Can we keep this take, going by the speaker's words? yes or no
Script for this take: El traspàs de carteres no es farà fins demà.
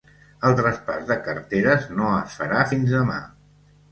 yes